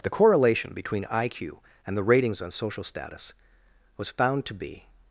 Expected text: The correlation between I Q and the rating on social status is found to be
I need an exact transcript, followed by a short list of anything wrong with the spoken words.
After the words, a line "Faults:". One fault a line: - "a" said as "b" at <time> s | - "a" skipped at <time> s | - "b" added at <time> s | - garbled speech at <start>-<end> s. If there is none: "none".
The correlation between I Q and the ratings on social status was found to be
Faults:
- "rating" said as "ratings" at 2.0 s
- "is" said as "was" at 4.0 s